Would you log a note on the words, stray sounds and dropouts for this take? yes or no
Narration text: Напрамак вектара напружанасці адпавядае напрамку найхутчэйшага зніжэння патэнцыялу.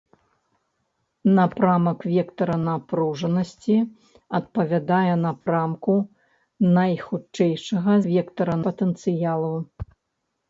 yes